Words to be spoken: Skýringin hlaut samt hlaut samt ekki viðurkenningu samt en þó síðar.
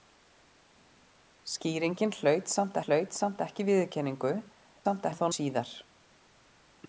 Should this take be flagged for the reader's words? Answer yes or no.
no